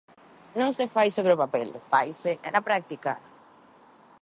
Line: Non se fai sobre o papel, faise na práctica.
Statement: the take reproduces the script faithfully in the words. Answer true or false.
true